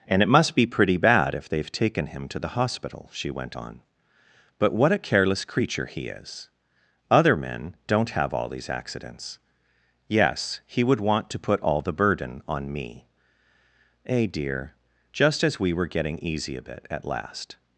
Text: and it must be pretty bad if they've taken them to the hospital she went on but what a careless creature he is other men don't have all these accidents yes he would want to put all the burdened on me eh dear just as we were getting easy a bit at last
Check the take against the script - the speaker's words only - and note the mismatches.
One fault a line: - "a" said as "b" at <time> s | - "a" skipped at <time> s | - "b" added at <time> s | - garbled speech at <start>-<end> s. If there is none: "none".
- "them" said as "him" at 2.1 s
- "burdened" said as "burden" at 11.9 s